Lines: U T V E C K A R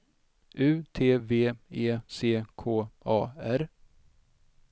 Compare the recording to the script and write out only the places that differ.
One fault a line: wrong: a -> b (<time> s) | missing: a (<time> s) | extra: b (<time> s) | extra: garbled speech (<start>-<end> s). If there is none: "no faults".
no faults